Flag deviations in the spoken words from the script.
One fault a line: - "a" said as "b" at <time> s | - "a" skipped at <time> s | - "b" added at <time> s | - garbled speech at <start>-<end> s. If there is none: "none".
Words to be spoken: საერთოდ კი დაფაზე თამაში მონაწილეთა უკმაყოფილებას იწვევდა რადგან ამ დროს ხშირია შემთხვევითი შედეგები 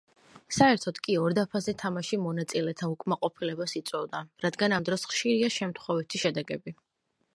- "ორ" added at 1.2 s